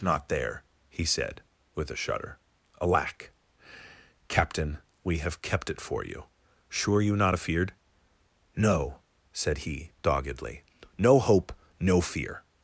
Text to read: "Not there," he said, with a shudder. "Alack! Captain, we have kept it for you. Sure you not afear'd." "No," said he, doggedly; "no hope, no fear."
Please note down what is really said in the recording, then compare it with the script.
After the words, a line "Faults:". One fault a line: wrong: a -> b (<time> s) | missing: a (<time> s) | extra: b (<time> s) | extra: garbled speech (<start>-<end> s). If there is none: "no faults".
"Not there," he said, with a shudder. "Alack! Captain, we have kept it for you. Sure you not afear'd." "No," said he, doggedly; "no hope, no fear."
Faults:
no faults